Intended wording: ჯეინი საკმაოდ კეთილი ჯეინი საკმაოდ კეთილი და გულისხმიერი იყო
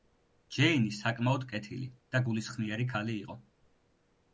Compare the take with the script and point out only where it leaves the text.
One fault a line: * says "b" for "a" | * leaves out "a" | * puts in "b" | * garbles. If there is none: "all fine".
* leaves out "ჯეინი საკმაოდ კეთილი"
* puts in "ქალი"